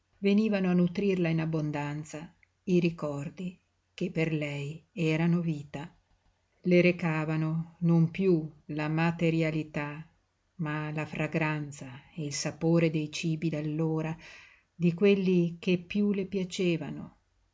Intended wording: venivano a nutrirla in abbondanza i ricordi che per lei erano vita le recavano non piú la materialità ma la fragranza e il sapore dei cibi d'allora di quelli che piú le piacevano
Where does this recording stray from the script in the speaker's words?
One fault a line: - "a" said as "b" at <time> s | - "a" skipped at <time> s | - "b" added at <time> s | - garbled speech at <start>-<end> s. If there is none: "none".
none